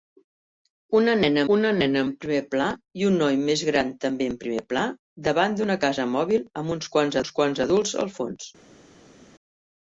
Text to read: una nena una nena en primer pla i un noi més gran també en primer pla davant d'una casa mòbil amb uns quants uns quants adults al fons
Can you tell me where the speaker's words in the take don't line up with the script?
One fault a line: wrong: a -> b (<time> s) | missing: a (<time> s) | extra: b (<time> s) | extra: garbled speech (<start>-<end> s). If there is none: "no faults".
no faults